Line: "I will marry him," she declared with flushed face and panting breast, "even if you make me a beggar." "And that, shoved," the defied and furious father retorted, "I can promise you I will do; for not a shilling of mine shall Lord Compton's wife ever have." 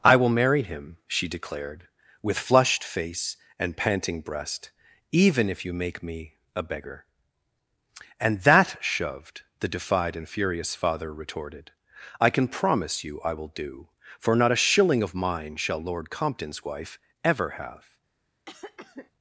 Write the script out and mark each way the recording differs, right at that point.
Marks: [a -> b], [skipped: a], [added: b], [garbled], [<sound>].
"I will marry him," she declared with flushed face and panting breast, "even if you make me a beggar." "And that, shoved," the defied and furious father retorted, "I can promise you I will do; for not a shilling of mine shall Lord Compton's wife ever have." [cough]